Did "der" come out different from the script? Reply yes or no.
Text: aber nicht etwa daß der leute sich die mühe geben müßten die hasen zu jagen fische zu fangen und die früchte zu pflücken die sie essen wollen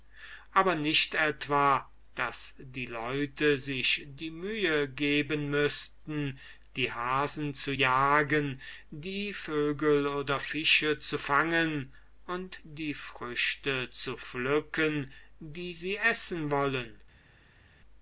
yes